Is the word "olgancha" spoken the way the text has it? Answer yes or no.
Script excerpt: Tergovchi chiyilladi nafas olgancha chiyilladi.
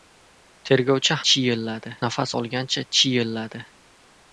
yes